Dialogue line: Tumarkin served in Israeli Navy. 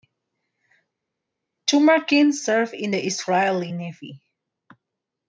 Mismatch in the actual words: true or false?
true